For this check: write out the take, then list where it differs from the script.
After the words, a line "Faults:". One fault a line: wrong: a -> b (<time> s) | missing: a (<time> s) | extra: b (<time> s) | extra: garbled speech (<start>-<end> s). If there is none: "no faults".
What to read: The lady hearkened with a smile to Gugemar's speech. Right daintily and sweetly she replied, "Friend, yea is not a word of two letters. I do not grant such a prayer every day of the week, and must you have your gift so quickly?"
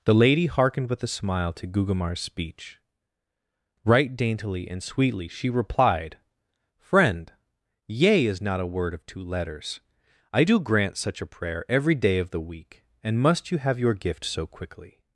The lady hearkened with a smile to Gugemar's speech. Right daintily and sweetly she replied, "Friend, yea is not a word of two letters. I do grant such a prayer every day of the week, and must you have your gift so quickly?"
Faults:
missing: not (10.6 s)